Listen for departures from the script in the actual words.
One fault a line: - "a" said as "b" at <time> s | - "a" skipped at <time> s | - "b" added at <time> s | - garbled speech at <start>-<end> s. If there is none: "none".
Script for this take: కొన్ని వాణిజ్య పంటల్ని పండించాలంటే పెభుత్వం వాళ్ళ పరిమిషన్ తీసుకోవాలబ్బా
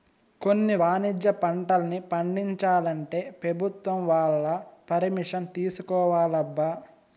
none